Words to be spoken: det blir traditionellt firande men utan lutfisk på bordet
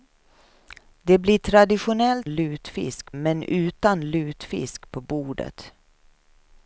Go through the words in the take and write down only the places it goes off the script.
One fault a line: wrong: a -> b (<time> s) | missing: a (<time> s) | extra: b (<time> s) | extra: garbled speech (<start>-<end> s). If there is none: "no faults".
wrong: firande -> lutfisk (2.3 s)